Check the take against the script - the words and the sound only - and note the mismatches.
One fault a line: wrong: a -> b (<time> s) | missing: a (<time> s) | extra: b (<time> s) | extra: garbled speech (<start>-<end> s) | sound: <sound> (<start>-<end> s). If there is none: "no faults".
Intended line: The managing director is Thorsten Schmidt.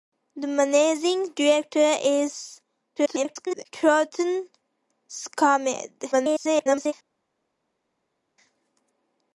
extra: garbled speech (3.0-3.6 s)
extra: garbled speech (6.1-6.9 s)